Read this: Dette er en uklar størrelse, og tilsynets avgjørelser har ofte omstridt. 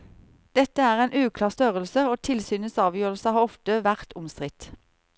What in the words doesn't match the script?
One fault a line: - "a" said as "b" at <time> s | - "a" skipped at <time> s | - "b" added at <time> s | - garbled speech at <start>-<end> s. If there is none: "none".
- "vært" added at 3.9 s